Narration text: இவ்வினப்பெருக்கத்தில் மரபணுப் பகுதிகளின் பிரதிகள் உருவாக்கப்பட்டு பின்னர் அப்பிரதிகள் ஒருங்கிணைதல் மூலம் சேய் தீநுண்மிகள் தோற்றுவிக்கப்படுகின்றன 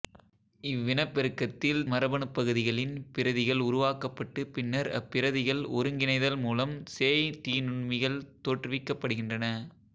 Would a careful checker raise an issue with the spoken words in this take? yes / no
no